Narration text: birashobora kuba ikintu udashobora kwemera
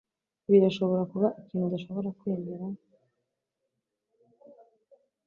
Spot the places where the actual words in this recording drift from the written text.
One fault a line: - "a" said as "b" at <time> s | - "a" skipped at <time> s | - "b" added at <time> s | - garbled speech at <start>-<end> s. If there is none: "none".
none